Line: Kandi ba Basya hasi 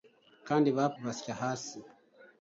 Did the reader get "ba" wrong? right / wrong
right